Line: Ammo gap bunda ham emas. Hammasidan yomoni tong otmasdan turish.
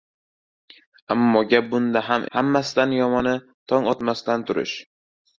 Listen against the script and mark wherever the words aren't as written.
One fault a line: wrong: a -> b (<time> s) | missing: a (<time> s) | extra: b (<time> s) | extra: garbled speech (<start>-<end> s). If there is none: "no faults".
missing: emas (2.2 s)